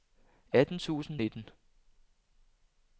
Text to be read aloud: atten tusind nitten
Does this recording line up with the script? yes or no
yes